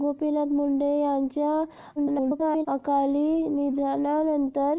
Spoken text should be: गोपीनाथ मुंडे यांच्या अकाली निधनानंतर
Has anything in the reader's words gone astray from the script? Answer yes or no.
yes